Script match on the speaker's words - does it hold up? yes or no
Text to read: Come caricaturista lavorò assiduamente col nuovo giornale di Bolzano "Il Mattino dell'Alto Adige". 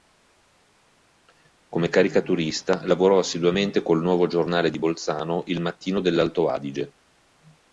yes